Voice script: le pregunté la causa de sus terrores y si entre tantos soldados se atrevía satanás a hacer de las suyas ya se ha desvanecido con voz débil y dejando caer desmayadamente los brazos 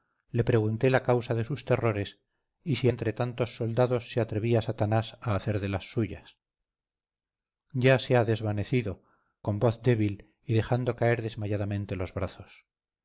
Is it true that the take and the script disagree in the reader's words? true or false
false